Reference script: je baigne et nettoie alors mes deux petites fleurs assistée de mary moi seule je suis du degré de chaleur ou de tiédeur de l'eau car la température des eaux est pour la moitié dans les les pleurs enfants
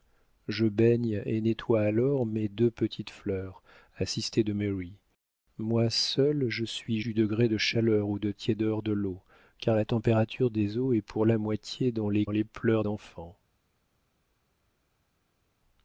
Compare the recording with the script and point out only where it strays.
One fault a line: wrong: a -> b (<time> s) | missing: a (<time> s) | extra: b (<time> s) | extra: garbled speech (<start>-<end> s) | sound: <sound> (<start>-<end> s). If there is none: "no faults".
no faults